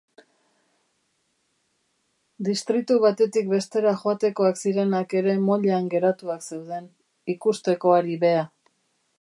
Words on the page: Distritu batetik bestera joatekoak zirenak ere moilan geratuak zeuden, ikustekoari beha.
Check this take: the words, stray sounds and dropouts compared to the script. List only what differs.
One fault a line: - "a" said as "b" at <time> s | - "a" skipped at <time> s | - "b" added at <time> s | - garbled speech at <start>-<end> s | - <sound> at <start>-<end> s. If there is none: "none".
none